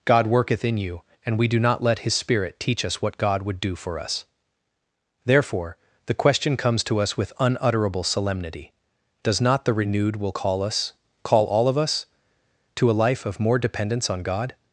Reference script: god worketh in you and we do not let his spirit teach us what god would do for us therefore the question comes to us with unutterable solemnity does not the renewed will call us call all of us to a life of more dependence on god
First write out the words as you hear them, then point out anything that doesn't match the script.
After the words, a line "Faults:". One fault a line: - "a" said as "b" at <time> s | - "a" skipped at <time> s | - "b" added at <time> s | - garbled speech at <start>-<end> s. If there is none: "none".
god worketh in you and we do not let his spirit teach us what god would do for us therefore the question comes to us with unutterable solemnity does not the renewed will call us call all of us to a life of more dependence on god
Faults:
none